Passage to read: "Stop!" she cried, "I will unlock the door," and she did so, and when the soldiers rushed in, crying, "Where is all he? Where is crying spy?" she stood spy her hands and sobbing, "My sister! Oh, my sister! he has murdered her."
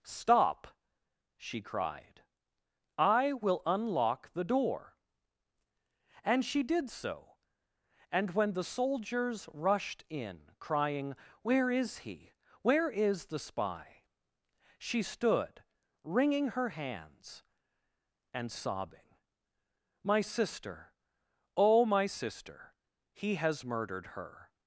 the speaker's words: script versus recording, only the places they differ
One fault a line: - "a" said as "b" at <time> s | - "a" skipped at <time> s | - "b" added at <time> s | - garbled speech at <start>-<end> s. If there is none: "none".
- "all" skipped at 12.0 s
- "crying" said as "the" at 13.3 s
- "spy" said as "wringing" at 16.0 s